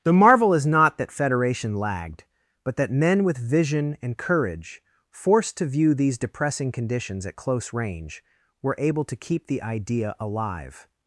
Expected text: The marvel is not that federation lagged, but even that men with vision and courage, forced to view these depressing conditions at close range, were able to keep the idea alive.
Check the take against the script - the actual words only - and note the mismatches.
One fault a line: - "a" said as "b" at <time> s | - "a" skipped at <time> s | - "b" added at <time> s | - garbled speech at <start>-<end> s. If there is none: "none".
- "even" skipped at 2.8 s